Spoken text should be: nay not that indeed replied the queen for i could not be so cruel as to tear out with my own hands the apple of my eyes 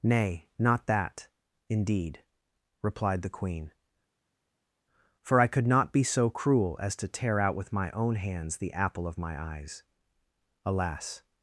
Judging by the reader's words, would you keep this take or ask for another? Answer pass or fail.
fail